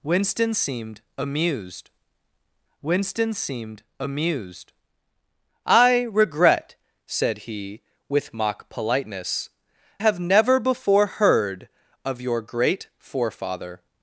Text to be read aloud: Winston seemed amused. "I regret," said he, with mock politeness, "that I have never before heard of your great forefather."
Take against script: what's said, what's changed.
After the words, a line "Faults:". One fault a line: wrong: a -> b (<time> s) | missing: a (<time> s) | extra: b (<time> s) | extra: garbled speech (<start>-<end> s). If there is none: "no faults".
Winston seemed amused winston seemed amused. "I regret," said he, with mock politeness, "have never before heard of your great forefather."
Faults:
extra: winston seemed amused (2.8 s)
missing: that I (9.5 s)